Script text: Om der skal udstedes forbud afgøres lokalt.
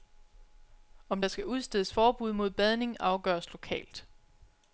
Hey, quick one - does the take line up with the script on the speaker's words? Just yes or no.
no